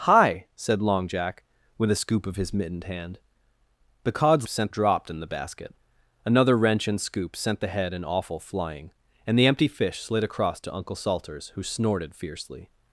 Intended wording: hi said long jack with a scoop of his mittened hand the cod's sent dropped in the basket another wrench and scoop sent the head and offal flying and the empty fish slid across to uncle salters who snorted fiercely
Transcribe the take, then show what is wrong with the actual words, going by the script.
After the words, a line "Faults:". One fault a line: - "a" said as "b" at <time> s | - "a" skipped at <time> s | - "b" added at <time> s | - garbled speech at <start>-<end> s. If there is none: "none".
hi said long jack with a scoop of his mittened hand the cod's sent dropped in the basket another wrench and scoop sent the head and offal flying and the empty fish slid across to uncle salters who snorted fiercely
Faults:
none